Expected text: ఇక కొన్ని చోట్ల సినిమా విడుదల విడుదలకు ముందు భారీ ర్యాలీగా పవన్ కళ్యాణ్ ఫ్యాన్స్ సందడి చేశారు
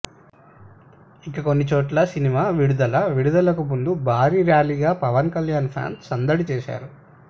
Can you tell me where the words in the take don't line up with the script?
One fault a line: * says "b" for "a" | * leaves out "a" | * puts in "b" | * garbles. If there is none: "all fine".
all fine